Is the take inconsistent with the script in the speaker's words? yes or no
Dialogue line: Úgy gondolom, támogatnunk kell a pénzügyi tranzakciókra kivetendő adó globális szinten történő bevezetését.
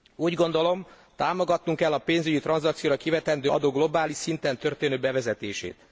no